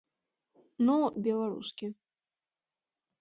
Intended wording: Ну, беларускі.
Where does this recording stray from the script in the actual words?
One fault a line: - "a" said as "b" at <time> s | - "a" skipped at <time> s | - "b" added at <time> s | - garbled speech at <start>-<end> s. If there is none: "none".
none